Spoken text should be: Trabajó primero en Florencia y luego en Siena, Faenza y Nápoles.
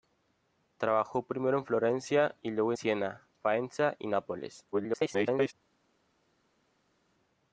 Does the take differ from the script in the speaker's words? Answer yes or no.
yes